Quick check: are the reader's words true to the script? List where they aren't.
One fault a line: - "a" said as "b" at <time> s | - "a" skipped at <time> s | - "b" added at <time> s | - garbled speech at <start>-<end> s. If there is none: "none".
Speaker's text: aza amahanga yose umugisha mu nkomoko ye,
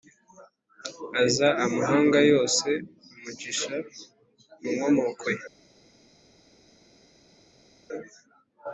none